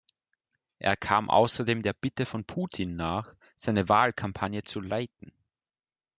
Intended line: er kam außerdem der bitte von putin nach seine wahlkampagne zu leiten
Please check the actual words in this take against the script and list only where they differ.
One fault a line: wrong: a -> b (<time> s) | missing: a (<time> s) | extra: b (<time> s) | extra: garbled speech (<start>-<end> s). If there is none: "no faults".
no faults